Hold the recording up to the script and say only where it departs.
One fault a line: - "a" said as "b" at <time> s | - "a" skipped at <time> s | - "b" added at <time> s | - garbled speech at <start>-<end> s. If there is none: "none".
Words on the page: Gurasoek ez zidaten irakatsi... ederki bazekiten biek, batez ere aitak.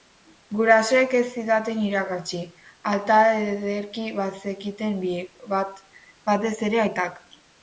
- "alta" added at 2.9 s